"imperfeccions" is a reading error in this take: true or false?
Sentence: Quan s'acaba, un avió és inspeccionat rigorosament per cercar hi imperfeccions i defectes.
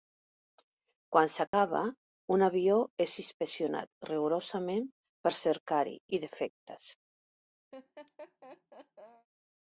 true